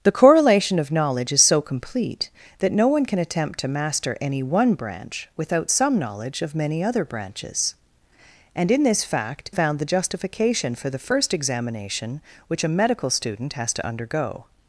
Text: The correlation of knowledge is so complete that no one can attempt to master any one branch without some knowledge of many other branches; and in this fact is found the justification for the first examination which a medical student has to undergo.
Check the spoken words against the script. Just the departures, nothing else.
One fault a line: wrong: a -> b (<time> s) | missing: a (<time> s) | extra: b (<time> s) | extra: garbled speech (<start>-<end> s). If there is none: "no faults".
missing: is (9.5 s)